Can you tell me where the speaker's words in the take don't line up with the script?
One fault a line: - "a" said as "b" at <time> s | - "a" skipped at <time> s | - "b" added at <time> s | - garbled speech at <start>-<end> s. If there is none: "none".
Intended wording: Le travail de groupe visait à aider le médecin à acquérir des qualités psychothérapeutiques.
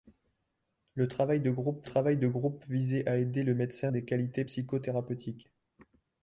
- "travail de groupe" added at 1.8 s
- "à acquérir" skipped at 3.9 s